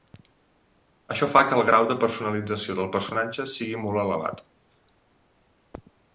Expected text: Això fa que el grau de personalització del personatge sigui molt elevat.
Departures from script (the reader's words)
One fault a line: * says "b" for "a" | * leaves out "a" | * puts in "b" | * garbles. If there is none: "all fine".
all fine